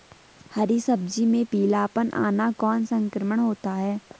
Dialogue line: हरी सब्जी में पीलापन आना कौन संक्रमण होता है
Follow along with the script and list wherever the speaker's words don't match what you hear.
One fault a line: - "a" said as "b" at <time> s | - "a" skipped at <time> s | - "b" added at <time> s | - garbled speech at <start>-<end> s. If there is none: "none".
none